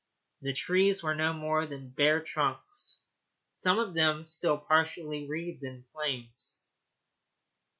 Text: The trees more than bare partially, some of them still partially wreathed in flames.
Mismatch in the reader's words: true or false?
true